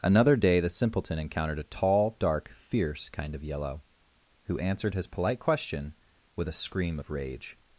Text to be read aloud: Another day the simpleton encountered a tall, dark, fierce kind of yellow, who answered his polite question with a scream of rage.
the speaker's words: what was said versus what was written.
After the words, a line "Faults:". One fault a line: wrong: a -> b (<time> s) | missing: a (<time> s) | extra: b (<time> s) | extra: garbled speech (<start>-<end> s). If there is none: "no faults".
Another day the simpleton encountered a tall, dark, fierce kind of yellow, who answered his polite question with a scream of rage.
Faults:
no faults